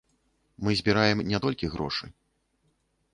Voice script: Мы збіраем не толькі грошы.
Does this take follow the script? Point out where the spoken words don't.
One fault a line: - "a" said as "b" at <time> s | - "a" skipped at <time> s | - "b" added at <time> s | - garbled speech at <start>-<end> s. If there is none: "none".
none